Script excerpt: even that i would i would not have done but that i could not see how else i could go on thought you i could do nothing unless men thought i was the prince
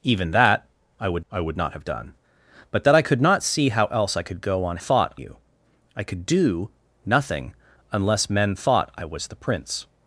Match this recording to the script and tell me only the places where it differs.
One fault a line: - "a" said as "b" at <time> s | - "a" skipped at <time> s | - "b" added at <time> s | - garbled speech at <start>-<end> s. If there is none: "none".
none